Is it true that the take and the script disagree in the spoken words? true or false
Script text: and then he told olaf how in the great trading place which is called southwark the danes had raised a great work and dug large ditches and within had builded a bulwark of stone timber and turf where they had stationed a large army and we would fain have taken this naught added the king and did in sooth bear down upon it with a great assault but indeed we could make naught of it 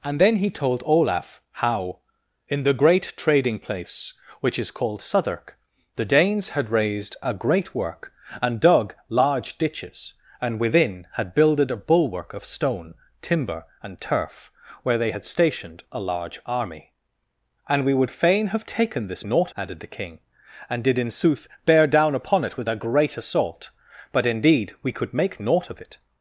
false